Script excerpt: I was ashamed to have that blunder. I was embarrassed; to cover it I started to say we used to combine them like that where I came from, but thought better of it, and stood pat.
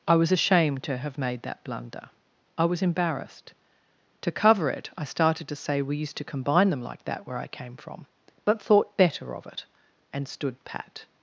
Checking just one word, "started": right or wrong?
right